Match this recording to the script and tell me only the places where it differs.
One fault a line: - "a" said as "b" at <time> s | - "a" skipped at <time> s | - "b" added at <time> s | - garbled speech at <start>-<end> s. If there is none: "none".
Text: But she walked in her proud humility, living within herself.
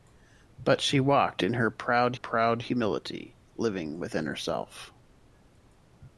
- "proud" added at 2.1 s